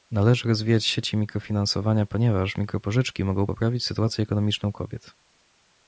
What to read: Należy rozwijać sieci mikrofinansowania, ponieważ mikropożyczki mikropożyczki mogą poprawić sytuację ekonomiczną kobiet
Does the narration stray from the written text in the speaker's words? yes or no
yes